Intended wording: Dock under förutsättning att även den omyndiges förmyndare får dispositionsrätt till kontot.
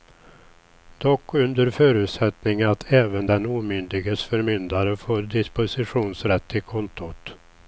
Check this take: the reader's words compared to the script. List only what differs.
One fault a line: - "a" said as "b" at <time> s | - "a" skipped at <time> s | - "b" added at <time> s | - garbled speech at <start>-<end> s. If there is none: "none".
none